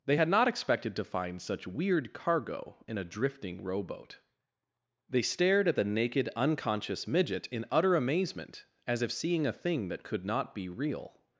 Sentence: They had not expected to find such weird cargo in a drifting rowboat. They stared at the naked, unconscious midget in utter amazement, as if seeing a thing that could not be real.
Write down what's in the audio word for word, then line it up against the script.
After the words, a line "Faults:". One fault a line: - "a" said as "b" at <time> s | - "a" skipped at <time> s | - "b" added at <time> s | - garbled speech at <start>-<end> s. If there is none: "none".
They had not expected to find such weird cargo in a drifting rowboat. They stared at the naked, unconscious midget in utter amazement, as if seeing a thing that could not be real.
Faults:
none